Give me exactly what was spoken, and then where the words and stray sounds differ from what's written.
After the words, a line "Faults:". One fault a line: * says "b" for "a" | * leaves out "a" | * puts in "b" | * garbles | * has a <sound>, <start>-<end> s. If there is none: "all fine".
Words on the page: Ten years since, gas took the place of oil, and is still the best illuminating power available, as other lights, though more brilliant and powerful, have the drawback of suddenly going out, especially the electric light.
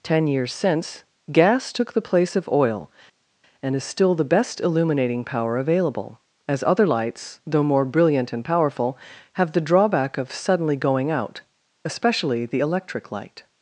Ten years since, gas took the place of oil, and is still the best illuminating power available, as other lights, though more brilliant and powerful, have the drawback of suddenly going out, especially the electric light.
Faults:
all fine